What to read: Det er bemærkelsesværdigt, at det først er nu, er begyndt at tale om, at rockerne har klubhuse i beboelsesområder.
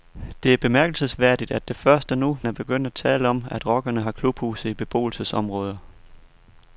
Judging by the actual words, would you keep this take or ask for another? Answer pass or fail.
pass